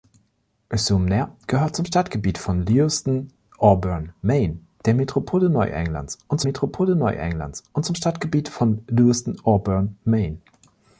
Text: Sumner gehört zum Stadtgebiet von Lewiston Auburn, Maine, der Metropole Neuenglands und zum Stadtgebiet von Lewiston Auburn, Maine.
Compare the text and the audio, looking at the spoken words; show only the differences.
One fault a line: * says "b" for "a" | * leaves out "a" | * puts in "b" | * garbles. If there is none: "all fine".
* puts in "Metropole Neuenglands und"